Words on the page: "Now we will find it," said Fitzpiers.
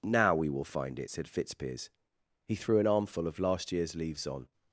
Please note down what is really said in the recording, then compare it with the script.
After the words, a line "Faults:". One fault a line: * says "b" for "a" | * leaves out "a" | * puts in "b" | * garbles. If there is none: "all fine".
"Now we will find it," said Fitzpiers. He threw an armful of last year's leaves on
Faults:
* puts in "He threw an armful of last year's leaves on"